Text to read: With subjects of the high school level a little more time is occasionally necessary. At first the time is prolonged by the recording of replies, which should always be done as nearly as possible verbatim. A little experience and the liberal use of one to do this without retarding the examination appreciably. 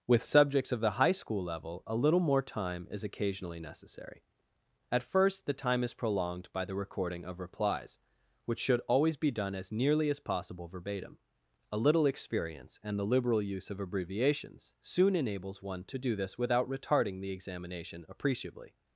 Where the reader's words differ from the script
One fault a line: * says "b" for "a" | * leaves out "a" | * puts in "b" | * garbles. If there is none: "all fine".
* puts in "abbreviations soon enables"